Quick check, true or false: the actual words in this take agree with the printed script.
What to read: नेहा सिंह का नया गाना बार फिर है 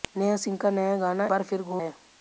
true